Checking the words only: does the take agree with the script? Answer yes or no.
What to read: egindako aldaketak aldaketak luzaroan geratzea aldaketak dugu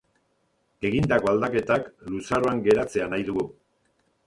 no